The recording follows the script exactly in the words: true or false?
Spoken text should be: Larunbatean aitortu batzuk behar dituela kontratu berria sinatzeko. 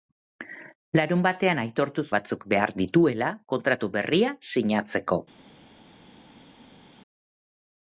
true